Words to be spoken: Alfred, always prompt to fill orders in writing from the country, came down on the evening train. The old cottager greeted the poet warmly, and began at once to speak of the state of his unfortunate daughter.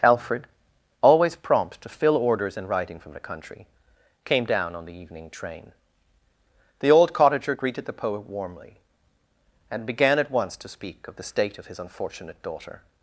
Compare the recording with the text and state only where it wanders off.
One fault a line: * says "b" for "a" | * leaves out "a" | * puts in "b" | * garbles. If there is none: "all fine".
all fine